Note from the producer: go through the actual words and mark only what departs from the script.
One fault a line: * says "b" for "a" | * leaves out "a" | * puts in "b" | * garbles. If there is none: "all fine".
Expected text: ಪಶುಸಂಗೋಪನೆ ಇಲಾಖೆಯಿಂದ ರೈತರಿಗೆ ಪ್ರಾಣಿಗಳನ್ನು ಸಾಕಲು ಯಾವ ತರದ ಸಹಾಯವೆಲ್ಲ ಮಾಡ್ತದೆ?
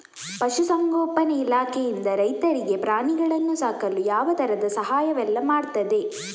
all fine